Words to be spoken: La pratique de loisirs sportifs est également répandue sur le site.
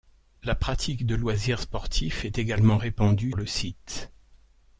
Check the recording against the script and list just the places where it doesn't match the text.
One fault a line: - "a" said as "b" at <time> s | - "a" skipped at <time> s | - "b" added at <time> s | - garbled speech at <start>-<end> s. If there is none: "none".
- "sur" skipped at 3.3 s